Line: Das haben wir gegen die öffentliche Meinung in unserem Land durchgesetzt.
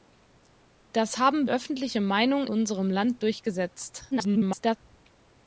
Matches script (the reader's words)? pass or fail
fail